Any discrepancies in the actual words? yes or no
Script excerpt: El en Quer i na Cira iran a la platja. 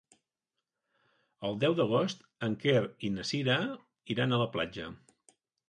yes